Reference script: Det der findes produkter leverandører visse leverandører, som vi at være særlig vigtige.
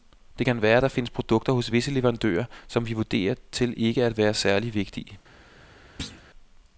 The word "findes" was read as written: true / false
true